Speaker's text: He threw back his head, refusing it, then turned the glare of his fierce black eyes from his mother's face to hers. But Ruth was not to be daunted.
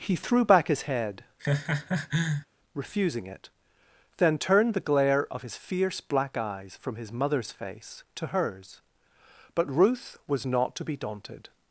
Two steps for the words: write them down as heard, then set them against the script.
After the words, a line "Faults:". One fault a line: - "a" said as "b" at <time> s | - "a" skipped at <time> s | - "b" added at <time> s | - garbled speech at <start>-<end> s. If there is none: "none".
He threw back his head, refusing it, then turned the glare of his fierce black eyes from his mother's face to hers. But Ruth was not to be daunted.
Faults:
none